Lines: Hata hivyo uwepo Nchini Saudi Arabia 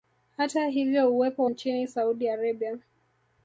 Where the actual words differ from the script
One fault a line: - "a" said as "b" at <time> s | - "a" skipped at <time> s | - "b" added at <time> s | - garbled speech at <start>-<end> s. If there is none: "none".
none